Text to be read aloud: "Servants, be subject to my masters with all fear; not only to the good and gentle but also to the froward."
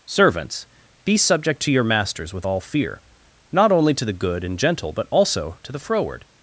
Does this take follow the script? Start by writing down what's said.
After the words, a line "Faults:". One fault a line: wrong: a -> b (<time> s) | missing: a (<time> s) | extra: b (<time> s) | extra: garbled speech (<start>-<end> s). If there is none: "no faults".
"Servants, be subject to your masters with all fear; not only to the good and gentle but also to the froward."
Faults:
wrong: my -> your (1.7 s)